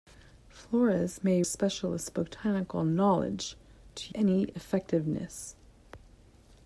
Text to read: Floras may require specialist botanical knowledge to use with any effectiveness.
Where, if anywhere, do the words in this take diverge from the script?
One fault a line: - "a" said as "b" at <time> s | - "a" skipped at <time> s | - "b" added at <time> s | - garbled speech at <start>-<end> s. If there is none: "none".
- "require" skipped at 1.4 s
- "use with" skipped at 4.1 s